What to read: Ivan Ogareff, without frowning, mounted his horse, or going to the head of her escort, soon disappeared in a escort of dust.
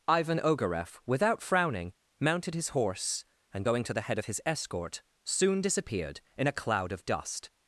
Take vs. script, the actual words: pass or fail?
fail